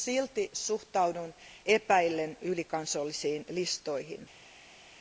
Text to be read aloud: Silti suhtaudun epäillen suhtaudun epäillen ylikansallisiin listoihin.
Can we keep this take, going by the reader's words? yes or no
no